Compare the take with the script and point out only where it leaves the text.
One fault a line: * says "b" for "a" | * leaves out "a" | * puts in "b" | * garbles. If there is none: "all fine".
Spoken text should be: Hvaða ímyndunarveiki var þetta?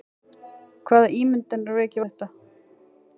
* leaves out "var"